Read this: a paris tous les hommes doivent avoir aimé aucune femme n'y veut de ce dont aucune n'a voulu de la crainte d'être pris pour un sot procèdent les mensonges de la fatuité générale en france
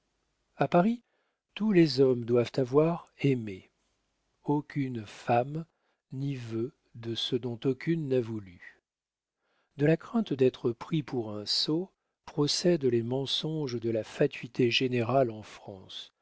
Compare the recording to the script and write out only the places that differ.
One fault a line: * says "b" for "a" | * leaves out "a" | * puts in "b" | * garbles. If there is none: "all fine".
all fine